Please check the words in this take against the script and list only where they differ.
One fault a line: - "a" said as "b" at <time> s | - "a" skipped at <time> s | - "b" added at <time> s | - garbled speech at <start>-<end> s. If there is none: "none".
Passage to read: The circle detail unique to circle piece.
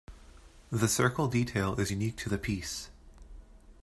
- "is" added at 1.8 s
- "circle" said as "the" at 2.3 s